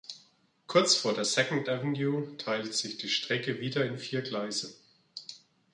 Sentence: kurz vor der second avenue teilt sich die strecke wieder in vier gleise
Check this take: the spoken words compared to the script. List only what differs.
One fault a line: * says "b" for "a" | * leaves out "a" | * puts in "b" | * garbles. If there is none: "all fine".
all fine